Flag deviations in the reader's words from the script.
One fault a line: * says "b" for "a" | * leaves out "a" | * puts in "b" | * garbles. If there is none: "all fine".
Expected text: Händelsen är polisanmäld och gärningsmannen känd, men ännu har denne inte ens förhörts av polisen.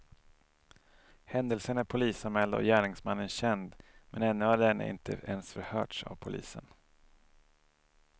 all fine